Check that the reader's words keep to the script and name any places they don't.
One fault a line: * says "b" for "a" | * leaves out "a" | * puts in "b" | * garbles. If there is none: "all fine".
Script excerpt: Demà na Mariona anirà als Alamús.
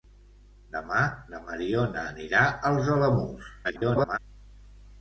* garbles